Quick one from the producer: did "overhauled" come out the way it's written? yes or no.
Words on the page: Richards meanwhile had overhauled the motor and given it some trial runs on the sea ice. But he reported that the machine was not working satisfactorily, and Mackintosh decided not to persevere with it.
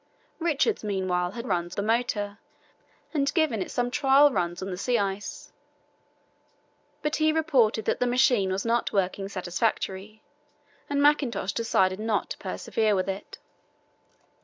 no